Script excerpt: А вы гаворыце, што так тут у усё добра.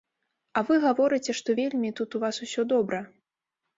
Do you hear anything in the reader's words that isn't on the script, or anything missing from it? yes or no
yes